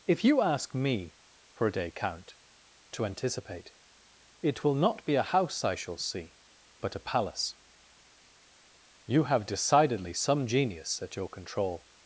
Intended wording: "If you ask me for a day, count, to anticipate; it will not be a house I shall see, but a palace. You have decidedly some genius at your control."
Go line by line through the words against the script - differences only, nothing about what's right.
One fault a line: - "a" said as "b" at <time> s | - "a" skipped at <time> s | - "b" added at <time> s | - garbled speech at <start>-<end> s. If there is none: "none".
none